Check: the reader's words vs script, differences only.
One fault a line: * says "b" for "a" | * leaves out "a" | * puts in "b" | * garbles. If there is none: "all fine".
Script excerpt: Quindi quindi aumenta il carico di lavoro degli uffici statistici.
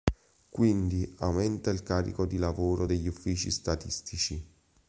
* leaves out "quindi"